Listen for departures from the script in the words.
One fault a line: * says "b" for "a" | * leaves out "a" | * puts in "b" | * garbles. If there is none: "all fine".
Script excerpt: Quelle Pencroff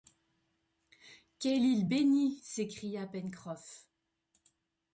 * puts in "île bénie s'écria"